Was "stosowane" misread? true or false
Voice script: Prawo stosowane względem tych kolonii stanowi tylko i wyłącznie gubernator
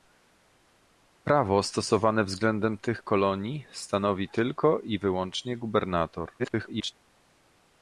false